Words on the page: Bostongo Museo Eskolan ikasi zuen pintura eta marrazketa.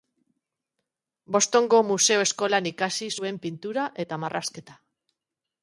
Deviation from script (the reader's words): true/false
false